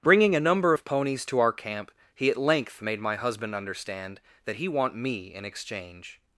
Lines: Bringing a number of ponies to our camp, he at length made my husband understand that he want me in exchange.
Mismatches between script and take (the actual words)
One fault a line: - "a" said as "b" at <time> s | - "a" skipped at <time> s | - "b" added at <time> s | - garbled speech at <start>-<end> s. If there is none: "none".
none